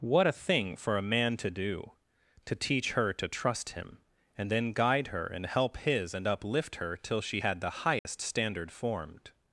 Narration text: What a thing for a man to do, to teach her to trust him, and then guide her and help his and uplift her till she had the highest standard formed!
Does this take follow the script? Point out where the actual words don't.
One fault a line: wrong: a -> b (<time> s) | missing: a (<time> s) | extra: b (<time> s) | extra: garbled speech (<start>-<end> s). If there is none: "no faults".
no faults